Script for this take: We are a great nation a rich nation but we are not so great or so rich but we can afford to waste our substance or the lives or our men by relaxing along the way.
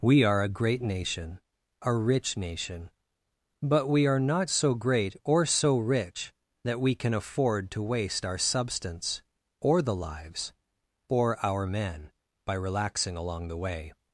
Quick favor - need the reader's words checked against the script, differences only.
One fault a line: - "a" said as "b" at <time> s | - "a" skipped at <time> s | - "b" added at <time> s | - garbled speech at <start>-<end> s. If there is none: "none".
- "but" said as "that" at 6.6 s